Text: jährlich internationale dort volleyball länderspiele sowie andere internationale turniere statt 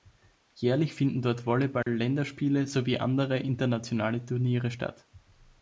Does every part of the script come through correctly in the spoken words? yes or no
no